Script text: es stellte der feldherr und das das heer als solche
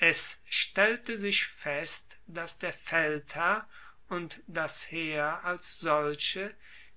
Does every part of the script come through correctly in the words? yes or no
no